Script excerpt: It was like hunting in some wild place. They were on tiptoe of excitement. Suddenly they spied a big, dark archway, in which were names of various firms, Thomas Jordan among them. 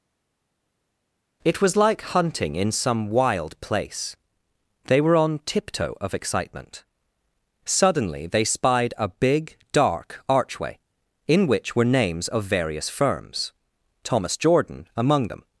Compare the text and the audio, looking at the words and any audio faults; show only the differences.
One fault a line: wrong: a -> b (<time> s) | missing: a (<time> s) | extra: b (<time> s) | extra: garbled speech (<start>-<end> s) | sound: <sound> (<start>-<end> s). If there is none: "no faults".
no faults